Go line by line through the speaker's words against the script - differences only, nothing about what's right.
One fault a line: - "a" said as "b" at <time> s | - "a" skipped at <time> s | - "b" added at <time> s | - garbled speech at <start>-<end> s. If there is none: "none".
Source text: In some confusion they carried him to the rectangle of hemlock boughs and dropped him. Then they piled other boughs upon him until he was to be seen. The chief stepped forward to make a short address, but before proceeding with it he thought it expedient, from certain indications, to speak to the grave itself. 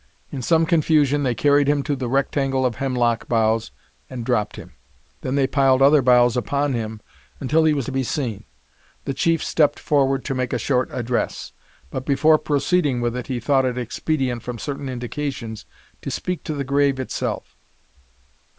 none